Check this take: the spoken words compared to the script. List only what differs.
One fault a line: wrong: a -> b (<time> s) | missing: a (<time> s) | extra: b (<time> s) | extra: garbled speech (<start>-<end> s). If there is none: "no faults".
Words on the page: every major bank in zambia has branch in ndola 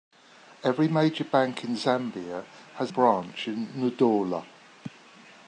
no faults